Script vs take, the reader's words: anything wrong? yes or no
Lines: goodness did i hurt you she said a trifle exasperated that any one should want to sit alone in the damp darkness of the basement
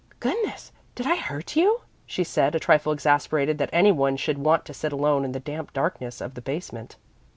no